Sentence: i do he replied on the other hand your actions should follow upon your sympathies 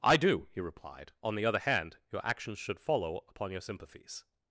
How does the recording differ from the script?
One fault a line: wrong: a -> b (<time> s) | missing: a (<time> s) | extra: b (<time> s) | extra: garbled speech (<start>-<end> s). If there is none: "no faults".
no faults